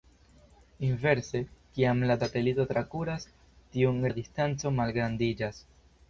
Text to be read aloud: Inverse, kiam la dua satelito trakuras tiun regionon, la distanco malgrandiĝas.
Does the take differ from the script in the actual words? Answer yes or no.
yes